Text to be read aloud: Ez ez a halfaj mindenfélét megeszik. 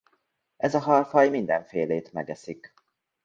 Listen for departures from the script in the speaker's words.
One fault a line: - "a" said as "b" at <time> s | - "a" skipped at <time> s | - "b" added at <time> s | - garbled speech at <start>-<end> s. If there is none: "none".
- "ez" skipped at 0.8 s